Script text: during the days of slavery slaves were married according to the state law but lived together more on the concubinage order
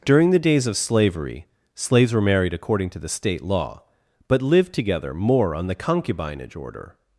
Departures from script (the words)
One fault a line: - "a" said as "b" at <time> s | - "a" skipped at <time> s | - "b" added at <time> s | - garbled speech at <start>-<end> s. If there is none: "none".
none